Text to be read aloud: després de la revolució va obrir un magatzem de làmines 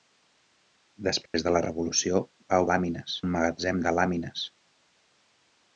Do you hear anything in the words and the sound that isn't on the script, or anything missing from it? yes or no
yes